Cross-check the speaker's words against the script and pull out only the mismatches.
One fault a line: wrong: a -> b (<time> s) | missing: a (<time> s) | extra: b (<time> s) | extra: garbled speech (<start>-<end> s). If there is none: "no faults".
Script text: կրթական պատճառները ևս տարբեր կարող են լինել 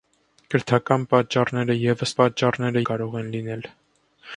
wrong: տարբեր -> պատճառները (2.2 s)